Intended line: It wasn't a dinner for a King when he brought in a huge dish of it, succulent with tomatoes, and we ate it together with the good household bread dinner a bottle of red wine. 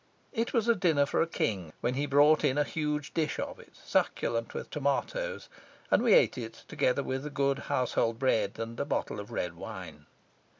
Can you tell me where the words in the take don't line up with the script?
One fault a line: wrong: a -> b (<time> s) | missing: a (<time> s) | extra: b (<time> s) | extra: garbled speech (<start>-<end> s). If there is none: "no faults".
wrong: wasn't -> was (0.5 s)
wrong: dinner -> and (8.6 s)